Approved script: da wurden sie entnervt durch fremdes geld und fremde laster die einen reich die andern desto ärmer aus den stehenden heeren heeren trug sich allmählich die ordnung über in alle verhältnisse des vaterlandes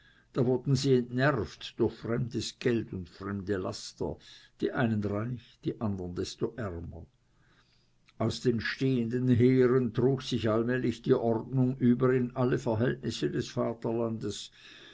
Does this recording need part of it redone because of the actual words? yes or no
yes